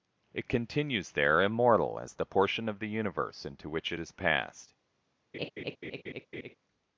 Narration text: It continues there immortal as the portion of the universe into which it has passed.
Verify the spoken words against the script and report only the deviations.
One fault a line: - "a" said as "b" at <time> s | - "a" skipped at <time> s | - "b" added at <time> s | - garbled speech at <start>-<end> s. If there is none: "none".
none